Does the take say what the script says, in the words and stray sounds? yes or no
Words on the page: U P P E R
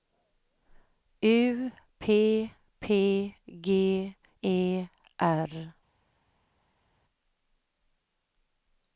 no